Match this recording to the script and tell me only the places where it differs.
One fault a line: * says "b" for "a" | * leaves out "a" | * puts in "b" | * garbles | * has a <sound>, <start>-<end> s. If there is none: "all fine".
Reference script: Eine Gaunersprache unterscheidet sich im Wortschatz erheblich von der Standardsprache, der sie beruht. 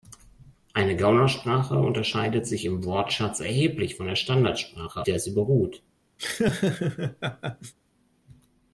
* has a laugh, 6.2-7.7 s